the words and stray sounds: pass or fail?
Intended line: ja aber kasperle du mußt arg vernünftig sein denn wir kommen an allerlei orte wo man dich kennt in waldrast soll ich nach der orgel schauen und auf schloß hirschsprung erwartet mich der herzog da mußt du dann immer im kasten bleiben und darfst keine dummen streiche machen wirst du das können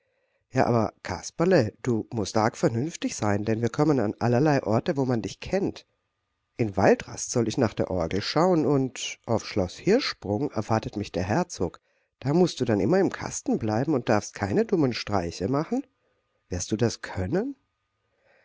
pass